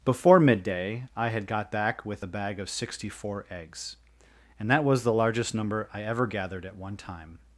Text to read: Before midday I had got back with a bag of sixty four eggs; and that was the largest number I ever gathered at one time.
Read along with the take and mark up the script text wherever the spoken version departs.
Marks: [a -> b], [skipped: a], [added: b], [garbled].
Before midday I had got back with a bag of sixty four eggs; and that was the largest number I ever gathered at one time.